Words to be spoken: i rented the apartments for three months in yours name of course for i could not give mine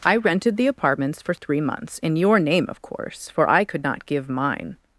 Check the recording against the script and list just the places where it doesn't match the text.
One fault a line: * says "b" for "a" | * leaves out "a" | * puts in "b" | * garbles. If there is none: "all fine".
* says "your" for "yours"